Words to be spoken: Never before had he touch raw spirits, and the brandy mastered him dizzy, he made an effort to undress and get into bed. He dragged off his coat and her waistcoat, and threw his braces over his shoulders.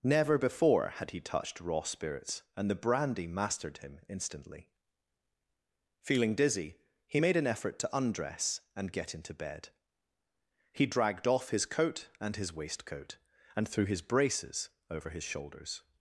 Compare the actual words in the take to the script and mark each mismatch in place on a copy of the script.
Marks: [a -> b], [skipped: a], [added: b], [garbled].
Never before had he [touch -> touched] raw spirits, and the brandy mastered him [added: instantly Feeling] dizzy, he made an effort to undress and get into bed. He dragged off his coat and [her -> his] waistcoat, and threw his braces over his shoulders.